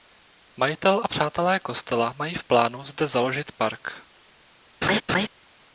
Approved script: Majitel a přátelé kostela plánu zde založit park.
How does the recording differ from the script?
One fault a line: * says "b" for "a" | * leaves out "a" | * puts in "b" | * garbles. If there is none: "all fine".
* puts in "mají v"